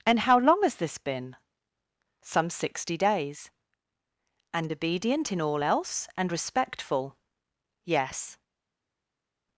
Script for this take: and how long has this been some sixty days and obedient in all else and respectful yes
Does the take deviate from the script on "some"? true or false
false